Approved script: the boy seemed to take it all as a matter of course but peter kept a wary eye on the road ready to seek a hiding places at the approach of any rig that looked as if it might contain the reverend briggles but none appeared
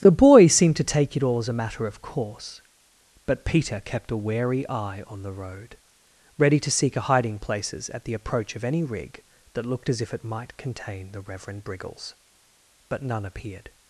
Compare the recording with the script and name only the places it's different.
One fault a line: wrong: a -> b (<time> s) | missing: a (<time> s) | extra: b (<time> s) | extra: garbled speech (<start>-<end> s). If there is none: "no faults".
no faults